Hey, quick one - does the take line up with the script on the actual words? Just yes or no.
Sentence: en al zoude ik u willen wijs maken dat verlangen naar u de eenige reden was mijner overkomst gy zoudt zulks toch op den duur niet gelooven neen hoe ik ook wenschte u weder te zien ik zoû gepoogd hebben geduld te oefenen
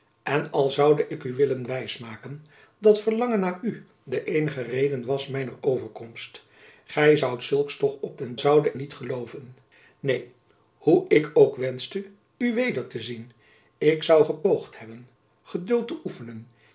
no